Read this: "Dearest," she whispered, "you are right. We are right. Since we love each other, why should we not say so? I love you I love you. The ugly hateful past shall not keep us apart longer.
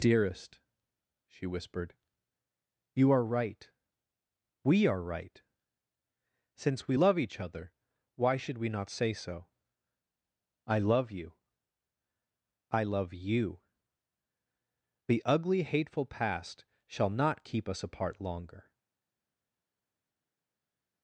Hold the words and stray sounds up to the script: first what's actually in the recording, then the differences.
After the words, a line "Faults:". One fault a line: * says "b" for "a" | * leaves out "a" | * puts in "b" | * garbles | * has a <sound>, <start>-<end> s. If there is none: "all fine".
"Dearest," she whispered, "you are right. We are right. Since we love each other, why should we not say so? I love you I love you. The ugly hateful past shall not keep us apart longer.
Faults:
all fine